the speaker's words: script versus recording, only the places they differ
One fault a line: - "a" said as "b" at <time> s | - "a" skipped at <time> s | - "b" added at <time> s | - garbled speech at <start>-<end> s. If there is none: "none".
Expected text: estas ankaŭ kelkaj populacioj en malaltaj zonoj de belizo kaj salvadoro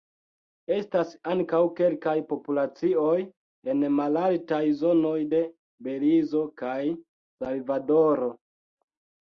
none